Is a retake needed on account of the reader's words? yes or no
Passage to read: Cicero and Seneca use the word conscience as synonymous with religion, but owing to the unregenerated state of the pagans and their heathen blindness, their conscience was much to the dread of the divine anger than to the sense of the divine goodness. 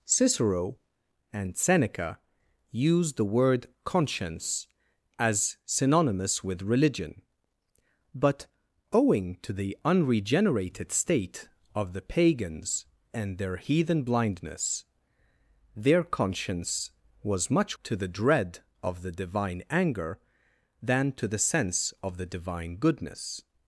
no